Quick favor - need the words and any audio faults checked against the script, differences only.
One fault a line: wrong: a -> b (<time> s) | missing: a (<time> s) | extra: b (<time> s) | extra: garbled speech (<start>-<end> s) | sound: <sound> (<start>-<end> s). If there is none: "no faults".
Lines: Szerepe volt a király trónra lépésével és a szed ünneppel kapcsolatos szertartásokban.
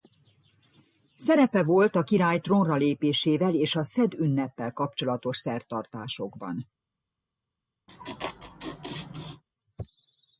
sound: laugh (7.9-9.4 s)